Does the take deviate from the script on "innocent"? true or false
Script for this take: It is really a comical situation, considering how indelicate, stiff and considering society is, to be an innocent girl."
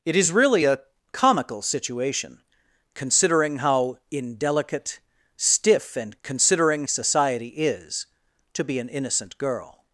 false